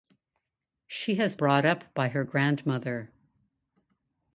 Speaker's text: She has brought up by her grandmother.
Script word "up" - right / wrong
right